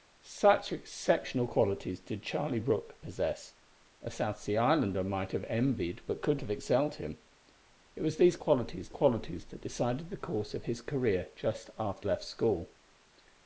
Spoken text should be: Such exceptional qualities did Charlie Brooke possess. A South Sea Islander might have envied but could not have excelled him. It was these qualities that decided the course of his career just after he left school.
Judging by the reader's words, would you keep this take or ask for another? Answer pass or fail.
fail